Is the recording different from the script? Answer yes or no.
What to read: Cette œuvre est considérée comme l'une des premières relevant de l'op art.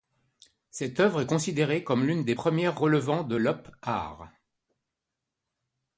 no